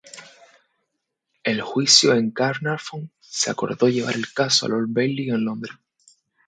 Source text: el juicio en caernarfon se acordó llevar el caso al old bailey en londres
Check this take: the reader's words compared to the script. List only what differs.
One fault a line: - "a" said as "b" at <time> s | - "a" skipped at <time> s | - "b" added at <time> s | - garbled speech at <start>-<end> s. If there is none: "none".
none